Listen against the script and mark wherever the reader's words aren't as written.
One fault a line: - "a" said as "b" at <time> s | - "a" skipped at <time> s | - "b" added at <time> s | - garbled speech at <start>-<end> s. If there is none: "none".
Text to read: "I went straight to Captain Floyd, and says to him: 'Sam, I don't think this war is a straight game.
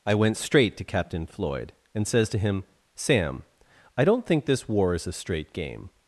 none